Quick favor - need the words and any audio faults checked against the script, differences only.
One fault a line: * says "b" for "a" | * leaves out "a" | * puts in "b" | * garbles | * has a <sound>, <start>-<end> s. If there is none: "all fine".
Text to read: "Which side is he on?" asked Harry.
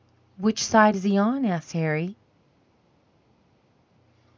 all fine